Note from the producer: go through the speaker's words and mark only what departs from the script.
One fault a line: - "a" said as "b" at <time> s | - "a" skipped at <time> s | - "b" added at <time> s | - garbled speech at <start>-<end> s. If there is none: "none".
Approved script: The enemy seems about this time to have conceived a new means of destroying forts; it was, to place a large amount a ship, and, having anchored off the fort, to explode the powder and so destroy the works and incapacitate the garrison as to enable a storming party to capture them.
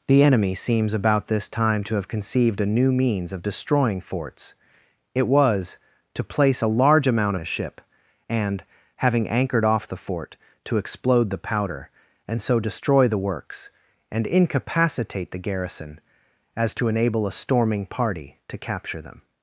none